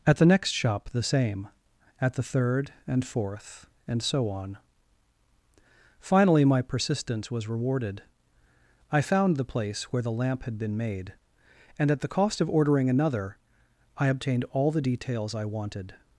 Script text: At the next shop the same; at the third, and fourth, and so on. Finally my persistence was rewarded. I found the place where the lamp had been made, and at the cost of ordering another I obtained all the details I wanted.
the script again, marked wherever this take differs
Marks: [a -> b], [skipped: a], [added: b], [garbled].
At the next shop the same; at the third, and fourth, and so on. Finally my persistence was rewarded. I found the place where the lamp had been made, and at the cost of ordering another I obtained all the details I wanted.